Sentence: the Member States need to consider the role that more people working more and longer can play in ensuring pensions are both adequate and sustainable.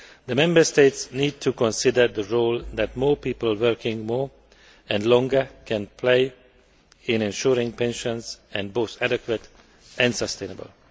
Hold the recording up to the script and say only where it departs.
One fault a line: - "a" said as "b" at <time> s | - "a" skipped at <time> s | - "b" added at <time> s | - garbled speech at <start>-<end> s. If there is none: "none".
none